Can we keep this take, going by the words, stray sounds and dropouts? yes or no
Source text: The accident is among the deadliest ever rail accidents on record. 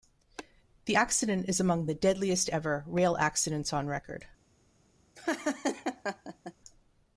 no